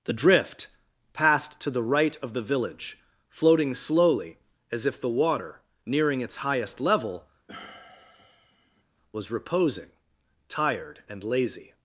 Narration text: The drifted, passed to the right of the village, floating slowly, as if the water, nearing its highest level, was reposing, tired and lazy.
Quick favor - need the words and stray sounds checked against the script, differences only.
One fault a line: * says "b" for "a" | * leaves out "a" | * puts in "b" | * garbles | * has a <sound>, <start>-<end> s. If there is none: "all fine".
* says "drift" for "drifted"
* has a sigh, 7.5-8.8 s